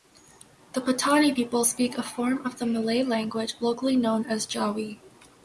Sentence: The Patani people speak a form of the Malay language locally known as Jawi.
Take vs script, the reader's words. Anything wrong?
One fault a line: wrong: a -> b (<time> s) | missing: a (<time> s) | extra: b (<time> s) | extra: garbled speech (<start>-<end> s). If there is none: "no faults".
no faults